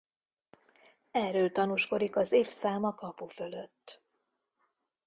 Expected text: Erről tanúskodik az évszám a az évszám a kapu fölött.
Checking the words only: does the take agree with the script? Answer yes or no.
no